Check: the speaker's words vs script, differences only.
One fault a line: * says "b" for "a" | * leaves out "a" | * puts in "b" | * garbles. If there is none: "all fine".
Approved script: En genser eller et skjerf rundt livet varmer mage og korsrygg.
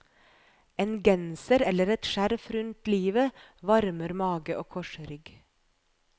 all fine